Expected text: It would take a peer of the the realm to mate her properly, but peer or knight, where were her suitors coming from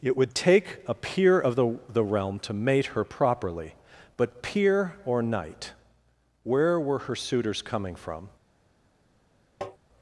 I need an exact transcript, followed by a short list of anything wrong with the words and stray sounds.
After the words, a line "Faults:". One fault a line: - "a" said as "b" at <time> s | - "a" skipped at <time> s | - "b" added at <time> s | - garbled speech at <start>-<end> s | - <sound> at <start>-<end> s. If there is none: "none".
It would take a peer of the the realm to mate her properly, but peer or knight, where were her suitors coming from
Faults:
- tap at 9.6-9.8 s